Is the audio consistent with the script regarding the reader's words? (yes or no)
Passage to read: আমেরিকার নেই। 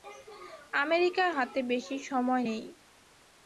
no